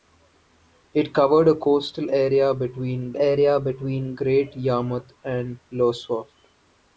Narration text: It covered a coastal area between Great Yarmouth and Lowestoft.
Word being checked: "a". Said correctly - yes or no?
yes